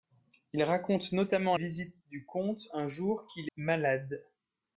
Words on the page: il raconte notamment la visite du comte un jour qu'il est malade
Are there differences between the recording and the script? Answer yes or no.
yes